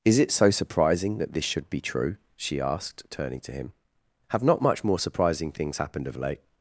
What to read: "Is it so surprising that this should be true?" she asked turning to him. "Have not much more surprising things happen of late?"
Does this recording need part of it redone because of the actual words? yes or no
yes